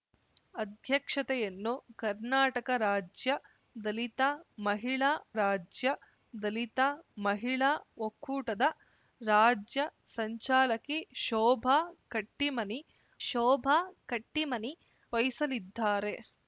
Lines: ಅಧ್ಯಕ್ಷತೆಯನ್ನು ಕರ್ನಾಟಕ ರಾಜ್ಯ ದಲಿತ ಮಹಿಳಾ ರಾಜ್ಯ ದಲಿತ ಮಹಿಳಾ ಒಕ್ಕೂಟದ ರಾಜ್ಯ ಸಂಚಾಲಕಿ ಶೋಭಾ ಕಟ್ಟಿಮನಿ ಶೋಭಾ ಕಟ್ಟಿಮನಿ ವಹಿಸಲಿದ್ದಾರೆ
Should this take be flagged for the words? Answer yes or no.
no